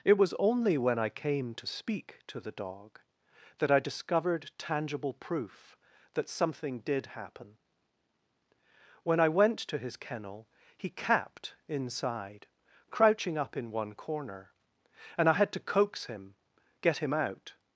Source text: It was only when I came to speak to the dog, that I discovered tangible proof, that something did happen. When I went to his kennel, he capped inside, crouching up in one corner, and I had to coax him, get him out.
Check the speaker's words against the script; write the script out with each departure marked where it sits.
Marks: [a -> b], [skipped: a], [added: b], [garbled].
It was only when I came to speak to the dog, that I discovered tangible proof, that something did happen. When I went to his kennel, he capped inside, crouching up in one corner, and I had to coax him, get him out.